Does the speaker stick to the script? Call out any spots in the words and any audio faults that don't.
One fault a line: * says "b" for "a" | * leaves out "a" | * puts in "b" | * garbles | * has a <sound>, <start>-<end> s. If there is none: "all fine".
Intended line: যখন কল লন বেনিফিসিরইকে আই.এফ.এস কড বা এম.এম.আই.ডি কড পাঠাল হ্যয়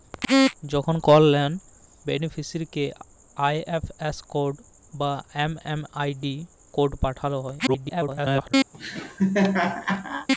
* garbles
* has a laugh, 8.7-10.3 s